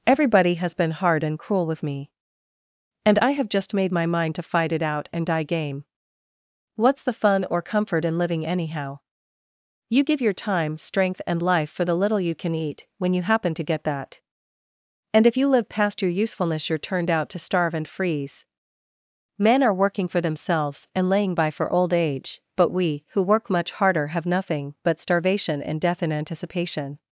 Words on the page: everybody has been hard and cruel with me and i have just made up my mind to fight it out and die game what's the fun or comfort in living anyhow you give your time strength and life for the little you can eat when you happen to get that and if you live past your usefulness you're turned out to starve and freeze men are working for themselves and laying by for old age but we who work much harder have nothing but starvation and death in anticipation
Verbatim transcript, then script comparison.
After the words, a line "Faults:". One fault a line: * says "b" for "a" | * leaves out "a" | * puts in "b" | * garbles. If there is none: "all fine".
everybody has been hard and cruel with me and i have just made my mind to fight it out and die game what's the fun or comfort in living anyhow you give your time strength and life for the little you can eat when you happen to get that and if you live past your usefulness you're turned out to starve and freeze men are working for themselves and laying by for old age but we who work much harder have nothing but starvation and death in anticipation
Faults:
* leaves out "up"